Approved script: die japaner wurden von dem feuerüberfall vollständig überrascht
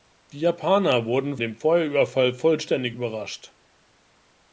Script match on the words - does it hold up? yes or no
no